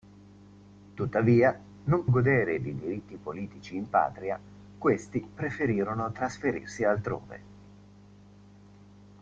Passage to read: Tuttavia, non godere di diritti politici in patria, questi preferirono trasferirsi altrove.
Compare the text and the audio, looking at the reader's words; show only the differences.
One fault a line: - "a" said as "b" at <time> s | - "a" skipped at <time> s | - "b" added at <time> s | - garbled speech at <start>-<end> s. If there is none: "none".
none